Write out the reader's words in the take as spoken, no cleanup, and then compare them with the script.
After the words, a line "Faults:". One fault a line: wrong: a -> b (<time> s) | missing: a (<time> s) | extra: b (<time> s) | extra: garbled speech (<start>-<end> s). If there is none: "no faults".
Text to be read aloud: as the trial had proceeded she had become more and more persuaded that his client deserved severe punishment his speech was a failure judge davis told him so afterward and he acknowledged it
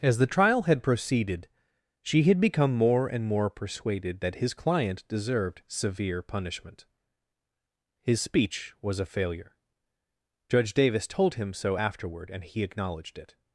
as the trial had proceeded she had become more and more persuaded that his client deserved severe punishment his speech was a failure judge davis told him so afterward and he acknowledged it
Faults:
no faults